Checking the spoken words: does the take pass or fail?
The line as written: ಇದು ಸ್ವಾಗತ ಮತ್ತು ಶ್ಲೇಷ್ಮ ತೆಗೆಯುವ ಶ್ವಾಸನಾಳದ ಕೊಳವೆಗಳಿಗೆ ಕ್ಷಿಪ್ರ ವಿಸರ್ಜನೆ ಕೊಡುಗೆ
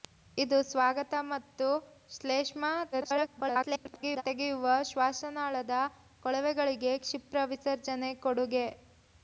fail